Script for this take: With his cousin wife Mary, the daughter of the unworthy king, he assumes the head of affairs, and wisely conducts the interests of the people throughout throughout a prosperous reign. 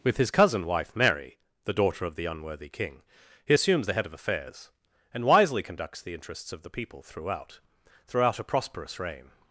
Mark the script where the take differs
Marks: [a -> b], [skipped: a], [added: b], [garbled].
With his cousin wife Mary, the daughter of the unworthy king, he assumes the head of affairs, and wisely conducts the interests of the people throughout throughout a prosperous reign.